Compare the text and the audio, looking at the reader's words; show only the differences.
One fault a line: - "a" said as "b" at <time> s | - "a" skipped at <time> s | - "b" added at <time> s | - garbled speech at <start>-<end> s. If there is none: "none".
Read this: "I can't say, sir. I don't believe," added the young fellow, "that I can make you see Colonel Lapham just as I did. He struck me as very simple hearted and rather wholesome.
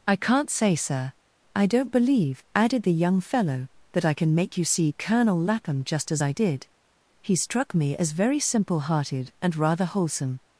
none